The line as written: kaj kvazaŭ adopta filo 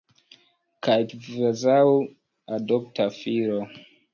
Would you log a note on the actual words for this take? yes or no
no